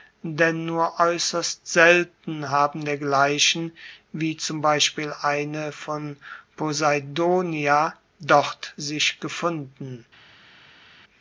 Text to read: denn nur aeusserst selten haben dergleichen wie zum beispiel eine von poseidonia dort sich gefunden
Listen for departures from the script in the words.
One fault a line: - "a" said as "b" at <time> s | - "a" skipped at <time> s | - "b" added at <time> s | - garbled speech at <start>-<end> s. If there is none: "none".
none